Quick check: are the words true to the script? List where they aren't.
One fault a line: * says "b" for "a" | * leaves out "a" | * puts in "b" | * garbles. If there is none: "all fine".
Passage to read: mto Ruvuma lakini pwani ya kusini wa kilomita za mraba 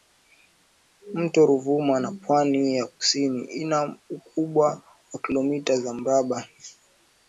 * says "na" for "lakini"
* puts in "ina ukubwa"